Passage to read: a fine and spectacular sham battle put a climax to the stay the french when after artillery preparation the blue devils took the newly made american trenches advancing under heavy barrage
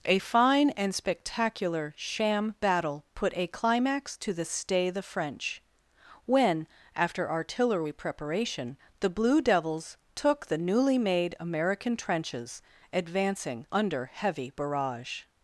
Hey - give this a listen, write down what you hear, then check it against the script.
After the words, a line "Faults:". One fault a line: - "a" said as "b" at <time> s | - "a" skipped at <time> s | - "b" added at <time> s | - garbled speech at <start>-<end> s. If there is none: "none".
a fine and spectacular sham battle put a climax to the stay the french when after artillery preparation the blue devils took the newly made american trenches advancing under heavy barrage
Faults:
none